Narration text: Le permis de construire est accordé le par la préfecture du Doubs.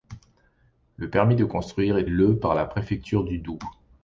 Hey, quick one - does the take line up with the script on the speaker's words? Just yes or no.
no